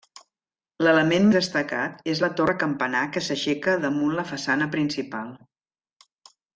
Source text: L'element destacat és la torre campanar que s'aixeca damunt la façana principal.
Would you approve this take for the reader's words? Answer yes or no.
yes